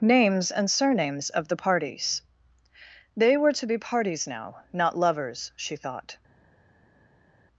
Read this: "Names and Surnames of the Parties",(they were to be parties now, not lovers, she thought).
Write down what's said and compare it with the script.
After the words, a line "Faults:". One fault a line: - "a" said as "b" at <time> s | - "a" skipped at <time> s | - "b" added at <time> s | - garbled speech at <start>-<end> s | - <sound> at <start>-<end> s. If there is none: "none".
"Names and Surnames of the Parties",(they were to be parties now, not lovers, she thought).
Faults:
none